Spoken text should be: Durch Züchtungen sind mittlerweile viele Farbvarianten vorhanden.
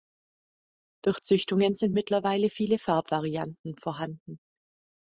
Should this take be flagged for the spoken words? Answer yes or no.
no